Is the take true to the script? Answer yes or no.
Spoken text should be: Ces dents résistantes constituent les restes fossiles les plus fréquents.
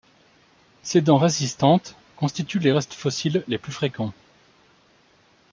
yes